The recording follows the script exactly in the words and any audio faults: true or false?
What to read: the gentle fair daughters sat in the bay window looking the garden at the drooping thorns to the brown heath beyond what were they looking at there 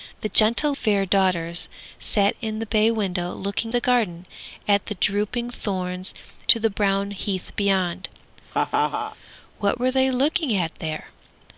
false